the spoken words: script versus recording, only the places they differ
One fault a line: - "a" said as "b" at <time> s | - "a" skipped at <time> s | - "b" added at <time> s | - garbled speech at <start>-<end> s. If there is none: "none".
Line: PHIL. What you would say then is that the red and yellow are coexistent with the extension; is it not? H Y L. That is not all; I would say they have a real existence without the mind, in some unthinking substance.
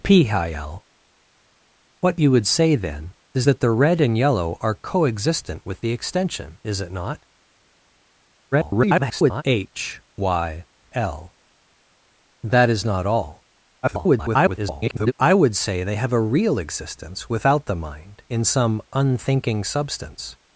- garbled speech at 8.5-9.4 s
- garbled speech at 13.8-15.1 s